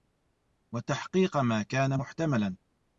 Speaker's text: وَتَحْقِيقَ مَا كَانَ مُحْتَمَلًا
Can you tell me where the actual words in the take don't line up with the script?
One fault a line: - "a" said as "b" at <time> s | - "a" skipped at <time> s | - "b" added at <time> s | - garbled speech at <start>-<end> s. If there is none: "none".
none